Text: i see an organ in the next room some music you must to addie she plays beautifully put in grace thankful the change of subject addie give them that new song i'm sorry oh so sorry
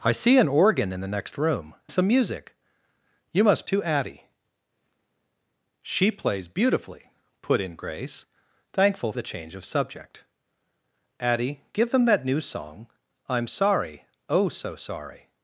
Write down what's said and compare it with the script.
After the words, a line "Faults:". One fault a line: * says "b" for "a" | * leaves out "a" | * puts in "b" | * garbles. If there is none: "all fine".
i see an organ in the next room some music you must to addie she plays beautifully put in grace thankful the change of subject addie give them that new song i'm sorry oh so sorry
Faults:
all fine